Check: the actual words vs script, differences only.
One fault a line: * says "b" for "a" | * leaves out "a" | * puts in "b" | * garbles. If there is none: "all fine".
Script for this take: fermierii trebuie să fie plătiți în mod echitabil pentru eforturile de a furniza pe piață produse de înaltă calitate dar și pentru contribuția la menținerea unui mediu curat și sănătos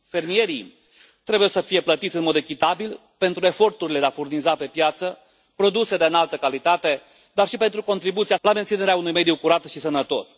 all fine